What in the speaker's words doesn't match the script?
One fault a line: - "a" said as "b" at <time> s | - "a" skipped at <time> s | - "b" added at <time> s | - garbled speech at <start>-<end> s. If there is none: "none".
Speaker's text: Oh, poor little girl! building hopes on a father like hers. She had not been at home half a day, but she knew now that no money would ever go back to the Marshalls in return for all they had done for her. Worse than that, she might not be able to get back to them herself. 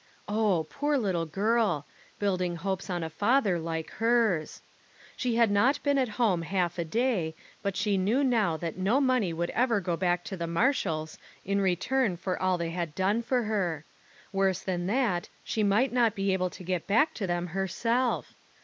none